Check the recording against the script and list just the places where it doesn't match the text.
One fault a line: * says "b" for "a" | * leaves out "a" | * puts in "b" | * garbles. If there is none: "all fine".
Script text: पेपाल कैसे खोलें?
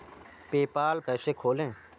all fine